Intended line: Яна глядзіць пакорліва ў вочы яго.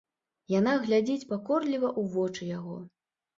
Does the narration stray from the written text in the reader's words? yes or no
no